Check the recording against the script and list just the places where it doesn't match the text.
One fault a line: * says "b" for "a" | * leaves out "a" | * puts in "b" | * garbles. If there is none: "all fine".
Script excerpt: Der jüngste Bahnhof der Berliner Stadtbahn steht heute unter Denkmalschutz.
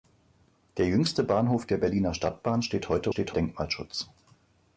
* says "steht" for "unter"